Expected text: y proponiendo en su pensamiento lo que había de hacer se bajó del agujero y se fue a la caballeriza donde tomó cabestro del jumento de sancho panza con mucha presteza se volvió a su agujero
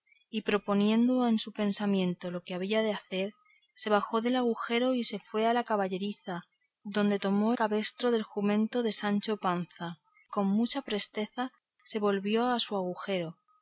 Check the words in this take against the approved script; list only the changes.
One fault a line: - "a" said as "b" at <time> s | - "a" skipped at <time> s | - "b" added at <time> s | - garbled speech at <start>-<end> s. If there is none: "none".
none